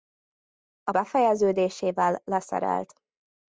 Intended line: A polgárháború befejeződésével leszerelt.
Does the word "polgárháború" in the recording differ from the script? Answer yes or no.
yes